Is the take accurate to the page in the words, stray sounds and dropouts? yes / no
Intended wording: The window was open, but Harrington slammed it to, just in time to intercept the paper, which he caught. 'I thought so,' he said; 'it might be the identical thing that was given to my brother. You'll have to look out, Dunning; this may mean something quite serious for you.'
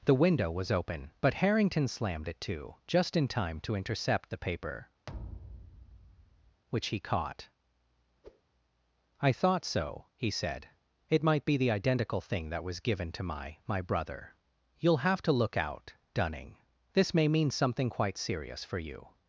no